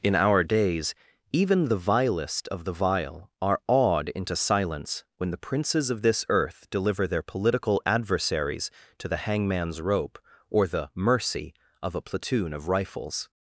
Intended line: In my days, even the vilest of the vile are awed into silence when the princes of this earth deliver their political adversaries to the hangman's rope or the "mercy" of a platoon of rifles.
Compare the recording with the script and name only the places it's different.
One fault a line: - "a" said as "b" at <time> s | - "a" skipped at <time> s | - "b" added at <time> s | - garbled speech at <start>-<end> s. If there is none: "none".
- "my" said as "our" at 0.1 s